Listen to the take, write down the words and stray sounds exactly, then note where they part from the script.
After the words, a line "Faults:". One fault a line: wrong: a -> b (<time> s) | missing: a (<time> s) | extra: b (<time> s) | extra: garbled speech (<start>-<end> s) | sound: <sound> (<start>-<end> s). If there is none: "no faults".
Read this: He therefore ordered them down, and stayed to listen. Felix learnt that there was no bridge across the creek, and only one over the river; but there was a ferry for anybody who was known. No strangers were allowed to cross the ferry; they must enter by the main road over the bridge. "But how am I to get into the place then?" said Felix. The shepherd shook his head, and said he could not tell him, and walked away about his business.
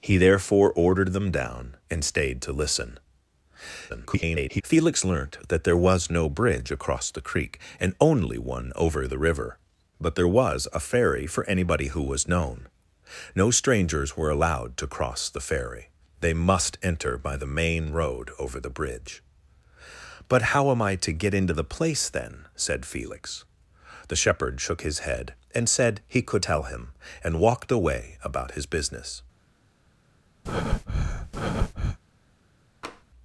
He therefore ordered them down, and stayed to listen. [garbled] Felix learnt that there was no bridge across the creek, and only one over the river; but there was a ferry for anybody who was known. No strangers were allowed to cross the ferry; they must enter by the main road over the bridge. "But how am I to get into the place then?" said Felix. The shepherd shook his head, and said he could tell him, and walked away about his business.
Faults:
extra: garbled speech (3.9-4.6 s)
missing: not (26.4 s)
sound: breath (30.4-32.0 s)
sound: tap (32.8-33.0 s)